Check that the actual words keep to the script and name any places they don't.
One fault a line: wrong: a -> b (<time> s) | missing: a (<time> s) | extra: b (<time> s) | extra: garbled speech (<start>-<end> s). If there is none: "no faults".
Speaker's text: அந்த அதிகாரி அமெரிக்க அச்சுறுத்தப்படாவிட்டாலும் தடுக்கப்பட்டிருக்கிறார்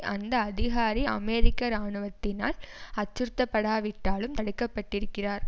extra: இராணுவத்தினால் (1.7 s)